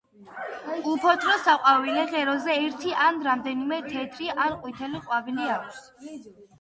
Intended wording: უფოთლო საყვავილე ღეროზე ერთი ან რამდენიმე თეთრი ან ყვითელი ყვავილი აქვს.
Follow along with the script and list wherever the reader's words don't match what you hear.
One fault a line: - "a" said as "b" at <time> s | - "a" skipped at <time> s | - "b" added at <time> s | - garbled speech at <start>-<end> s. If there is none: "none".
none